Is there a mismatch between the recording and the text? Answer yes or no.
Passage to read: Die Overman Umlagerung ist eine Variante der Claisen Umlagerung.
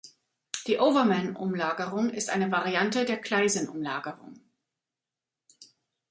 no